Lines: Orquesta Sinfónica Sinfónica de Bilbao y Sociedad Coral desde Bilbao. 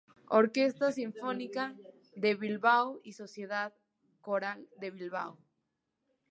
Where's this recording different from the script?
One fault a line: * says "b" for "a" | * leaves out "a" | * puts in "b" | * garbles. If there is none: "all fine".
* leaves out "Sinfónica"
* says "de" for "desde"